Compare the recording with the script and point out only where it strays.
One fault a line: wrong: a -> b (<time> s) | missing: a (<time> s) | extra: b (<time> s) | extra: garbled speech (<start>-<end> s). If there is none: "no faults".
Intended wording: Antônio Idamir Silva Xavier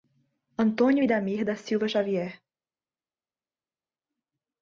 extra: da (1.4 s)